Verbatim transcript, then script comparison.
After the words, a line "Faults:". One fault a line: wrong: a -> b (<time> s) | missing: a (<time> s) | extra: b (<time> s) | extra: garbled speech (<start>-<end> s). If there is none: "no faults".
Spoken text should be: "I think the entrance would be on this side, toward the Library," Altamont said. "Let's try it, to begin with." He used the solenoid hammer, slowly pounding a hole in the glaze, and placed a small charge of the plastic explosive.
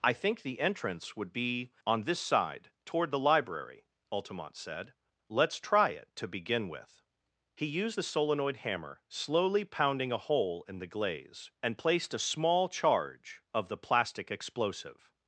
"I think the entrance would be on this side, toward the Library," Altamont said. "Let's try it, to begin with." He used the solenoid hammer, slowly pounding a hole in the glaze, and placed a small charge of the plastic explosive.
Faults:
no faults